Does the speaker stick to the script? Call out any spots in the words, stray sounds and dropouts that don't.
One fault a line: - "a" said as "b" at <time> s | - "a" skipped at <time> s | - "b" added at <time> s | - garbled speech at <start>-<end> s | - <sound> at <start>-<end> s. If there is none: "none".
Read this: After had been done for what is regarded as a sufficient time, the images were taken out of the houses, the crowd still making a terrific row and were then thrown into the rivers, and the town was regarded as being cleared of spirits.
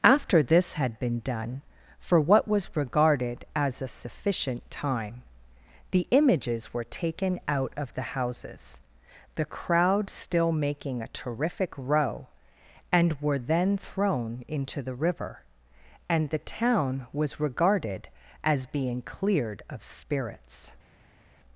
- "this" added at 0.4 s
- "is" said as "was" at 2.5 s
- "rivers" said as "river" at 14.9 s